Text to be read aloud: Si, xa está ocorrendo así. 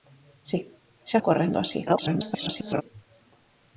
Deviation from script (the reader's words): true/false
true